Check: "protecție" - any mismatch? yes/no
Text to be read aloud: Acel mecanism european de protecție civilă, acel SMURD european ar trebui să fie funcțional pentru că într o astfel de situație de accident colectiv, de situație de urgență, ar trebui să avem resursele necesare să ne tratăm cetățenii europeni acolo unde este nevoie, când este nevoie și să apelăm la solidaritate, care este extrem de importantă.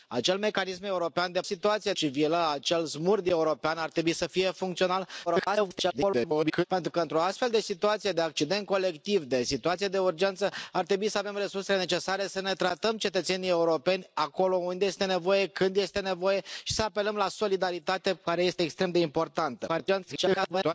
yes